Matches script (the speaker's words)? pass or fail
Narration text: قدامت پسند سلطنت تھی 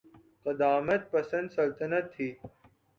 pass